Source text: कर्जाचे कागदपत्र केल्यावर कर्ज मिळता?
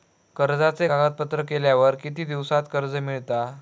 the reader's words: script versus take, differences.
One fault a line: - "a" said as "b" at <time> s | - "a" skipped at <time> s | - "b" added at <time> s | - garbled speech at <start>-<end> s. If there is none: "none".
- "किती दिवसात" added at 1.9 s